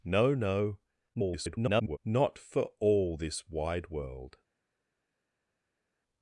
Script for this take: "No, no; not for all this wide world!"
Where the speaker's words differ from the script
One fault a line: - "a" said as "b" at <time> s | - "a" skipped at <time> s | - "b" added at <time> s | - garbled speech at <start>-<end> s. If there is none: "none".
- garbled speech at 1.1-2.0 s